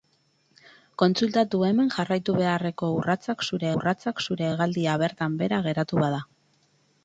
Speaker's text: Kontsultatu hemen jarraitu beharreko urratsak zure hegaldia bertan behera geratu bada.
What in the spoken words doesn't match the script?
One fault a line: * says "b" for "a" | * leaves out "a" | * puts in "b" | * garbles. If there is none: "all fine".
* puts in "urratsak zure"